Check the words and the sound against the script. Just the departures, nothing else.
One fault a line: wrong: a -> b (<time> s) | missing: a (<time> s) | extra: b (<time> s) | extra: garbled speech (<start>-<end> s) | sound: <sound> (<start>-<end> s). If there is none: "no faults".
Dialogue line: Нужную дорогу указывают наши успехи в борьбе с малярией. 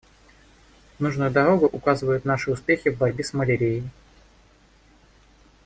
no faults